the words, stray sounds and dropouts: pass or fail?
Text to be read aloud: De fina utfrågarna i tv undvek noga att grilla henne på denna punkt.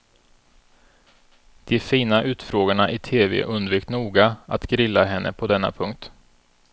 pass